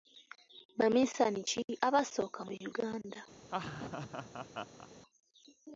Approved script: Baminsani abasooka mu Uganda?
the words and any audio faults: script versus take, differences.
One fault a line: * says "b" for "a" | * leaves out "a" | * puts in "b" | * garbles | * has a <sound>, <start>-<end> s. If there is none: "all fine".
* puts in "ki"
* has a laugh, 3.4-4.9 s